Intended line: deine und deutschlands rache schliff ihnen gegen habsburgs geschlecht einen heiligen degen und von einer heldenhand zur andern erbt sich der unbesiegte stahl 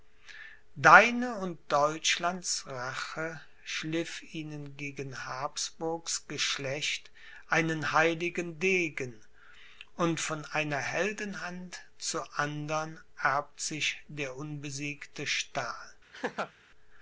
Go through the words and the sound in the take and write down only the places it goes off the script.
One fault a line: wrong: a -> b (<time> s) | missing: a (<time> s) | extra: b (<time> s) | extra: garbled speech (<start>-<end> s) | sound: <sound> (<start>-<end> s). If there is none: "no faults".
sound: laugh (16.1-16.5 s)